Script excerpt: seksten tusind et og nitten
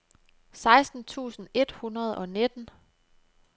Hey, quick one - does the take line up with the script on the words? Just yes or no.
no